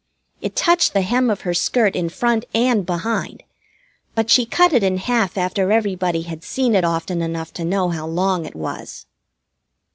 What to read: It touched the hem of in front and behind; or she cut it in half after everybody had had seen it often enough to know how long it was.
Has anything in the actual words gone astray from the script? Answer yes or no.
yes